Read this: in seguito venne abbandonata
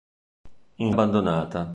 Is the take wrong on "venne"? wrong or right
wrong